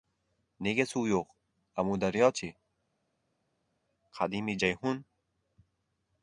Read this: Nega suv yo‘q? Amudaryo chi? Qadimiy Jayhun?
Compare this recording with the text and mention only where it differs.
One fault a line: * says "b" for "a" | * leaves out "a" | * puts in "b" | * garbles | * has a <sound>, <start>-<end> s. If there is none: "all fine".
all fine